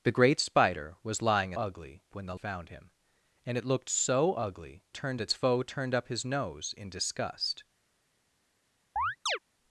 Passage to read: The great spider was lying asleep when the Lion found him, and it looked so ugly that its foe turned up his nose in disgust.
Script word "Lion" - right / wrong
wrong